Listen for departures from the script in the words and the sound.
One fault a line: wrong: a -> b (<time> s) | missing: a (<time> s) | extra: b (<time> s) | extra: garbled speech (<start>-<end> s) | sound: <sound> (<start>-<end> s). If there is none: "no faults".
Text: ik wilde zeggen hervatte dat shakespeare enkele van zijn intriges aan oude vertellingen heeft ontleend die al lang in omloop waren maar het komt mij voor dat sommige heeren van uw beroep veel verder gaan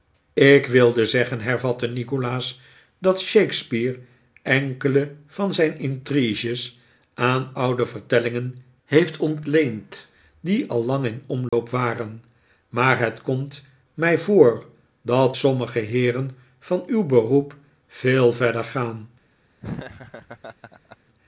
extra: nikolaas (1.9 s)
sound: dropout (11.5-11.5 s)
sound: laugh (19.6-21.0 s)